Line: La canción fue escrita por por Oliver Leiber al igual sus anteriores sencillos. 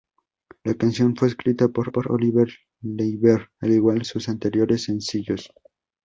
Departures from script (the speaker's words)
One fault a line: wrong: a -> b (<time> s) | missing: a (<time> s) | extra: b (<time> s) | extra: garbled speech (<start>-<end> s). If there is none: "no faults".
no faults